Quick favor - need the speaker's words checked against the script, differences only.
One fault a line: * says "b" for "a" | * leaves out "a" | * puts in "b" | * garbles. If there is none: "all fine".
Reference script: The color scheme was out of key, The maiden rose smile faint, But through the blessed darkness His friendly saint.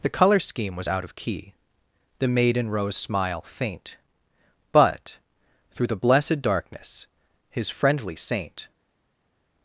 all fine